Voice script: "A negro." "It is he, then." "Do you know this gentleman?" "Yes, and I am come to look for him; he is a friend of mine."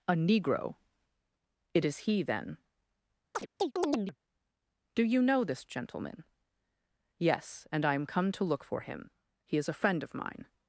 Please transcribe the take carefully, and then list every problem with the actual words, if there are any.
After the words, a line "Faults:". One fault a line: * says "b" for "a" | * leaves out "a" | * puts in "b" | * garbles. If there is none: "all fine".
"A negro." "It is he, then." "Do you know this gentleman?" "Yes, and I am come to look for him; he is a friend of mine."
Faults:
all fine